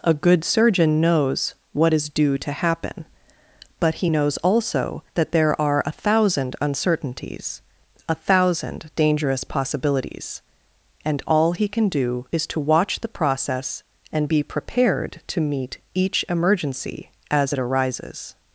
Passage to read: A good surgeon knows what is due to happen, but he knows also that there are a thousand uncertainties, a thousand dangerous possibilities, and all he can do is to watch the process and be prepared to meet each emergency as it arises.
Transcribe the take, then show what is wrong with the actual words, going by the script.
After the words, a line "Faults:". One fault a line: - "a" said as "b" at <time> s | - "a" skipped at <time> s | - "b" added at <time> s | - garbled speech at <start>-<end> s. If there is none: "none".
A good surgeon knows what is due to happen, but he knows also that there are a thousand uncertainties, a thousand dangerous possibilities, and all he can do is to watch the process and be prepared to meet each emergency as it arises.
Faults:
none